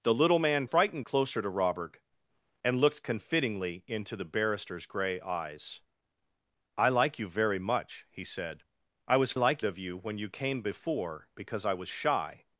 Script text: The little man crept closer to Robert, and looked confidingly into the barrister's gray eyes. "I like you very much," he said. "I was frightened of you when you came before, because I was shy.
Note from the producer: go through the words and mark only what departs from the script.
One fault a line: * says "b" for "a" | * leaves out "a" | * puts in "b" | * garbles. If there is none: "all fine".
* says "frightened" for "crept"
* says "like" for "frightened"